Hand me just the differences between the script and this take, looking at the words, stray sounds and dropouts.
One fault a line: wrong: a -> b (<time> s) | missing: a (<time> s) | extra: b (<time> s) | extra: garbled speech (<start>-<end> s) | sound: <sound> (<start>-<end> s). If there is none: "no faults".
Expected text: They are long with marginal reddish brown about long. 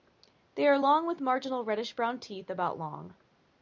extra: teeth (2.2 s)